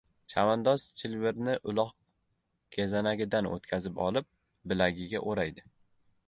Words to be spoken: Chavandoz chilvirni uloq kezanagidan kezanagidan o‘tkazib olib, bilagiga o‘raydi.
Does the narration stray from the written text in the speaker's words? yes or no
yes